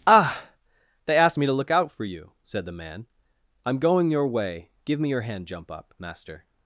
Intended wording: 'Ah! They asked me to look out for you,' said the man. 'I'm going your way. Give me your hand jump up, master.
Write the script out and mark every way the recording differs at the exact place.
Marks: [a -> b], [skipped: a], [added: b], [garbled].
'Ah! They asked me to look out for you,' said the man. 'I'm going your way. Give me your hand jump up, master.